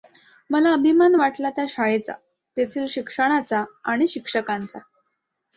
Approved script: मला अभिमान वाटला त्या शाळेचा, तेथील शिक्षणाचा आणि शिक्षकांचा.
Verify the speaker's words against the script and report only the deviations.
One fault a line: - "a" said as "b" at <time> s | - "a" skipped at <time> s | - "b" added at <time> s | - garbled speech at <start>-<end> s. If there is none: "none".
none